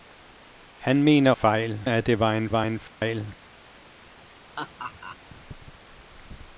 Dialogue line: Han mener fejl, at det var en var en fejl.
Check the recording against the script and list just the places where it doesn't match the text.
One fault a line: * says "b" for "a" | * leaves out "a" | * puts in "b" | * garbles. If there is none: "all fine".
all fine